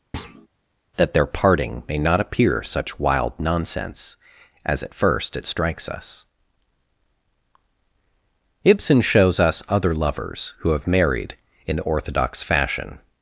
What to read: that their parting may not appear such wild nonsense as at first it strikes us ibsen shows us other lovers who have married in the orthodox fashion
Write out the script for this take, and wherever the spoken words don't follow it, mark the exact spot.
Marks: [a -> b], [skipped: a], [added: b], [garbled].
that their parting may not appear such wild nonsense as at first it strikes us ibsen shows us other lovers who have married in the orthodox fashion